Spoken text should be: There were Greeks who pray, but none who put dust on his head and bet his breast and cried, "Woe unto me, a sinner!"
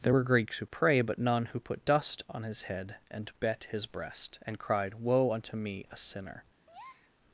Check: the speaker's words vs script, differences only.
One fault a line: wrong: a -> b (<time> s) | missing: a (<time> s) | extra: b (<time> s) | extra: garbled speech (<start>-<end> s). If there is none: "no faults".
no faults